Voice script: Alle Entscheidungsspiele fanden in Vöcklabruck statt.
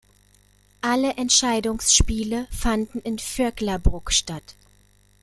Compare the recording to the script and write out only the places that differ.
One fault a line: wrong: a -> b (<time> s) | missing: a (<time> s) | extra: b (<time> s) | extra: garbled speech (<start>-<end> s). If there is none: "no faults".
no faults